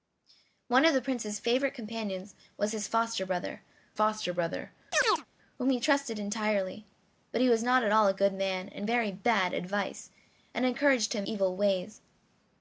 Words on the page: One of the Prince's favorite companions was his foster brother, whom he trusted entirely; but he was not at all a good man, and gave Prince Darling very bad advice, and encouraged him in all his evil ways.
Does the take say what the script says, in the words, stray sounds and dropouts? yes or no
no